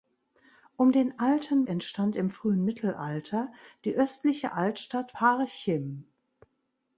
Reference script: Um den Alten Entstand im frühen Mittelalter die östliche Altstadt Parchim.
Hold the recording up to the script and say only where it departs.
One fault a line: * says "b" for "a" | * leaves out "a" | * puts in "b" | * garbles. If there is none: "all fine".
all fine